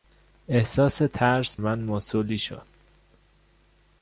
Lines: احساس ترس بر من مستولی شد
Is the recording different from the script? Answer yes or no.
yes